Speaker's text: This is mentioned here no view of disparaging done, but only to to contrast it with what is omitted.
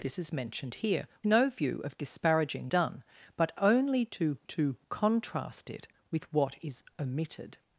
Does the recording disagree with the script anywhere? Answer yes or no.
no